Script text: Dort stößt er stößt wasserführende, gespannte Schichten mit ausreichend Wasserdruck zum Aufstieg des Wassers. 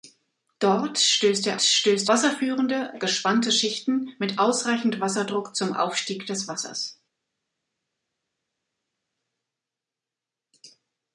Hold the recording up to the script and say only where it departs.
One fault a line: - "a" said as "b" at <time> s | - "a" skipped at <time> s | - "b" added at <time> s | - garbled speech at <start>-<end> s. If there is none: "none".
none